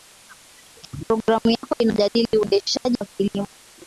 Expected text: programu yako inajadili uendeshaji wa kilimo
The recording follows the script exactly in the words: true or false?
true